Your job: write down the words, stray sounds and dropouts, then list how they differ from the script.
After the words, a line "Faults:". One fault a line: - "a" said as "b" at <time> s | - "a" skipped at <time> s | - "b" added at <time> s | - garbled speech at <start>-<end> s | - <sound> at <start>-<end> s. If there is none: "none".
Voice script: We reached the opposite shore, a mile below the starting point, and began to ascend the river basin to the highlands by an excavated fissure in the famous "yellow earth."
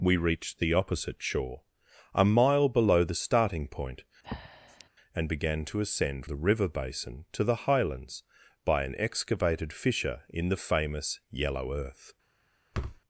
We reached the opposite shore, a mile below the starting point, and began to ascend the river basin to the highlands by an excavated fissure in the famous "yellow earth."
Faults:
- breath at 4.2-4.9 s
- thud at 12.7-13.0 s